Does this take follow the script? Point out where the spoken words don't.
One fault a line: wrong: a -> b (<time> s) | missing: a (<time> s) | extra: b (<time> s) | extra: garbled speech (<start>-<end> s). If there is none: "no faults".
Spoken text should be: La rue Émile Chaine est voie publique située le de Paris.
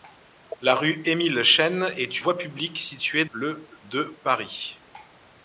no faults